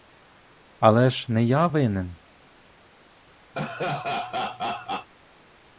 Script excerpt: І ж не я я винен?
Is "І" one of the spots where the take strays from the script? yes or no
yes